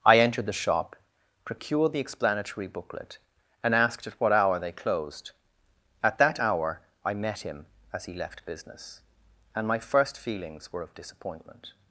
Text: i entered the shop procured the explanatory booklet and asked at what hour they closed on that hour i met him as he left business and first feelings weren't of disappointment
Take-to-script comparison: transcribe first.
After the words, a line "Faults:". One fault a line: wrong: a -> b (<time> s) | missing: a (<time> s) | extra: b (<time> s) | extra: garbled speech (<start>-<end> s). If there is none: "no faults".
i entered the shop procured the explanatory booklet and asked at what hour they closed at that hour i met him as he left business and my first feelings were of disappointment
Faults:
wrong: on -> at (6.0 s)
extra: my (9.7 s)
wrong: weren't -> were (10.7 s)